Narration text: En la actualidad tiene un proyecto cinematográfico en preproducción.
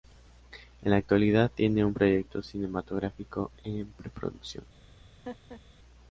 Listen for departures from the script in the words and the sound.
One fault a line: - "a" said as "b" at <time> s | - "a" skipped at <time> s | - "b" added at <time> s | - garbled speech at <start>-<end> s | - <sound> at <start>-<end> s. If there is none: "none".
- laugh at 5.2-5.6 s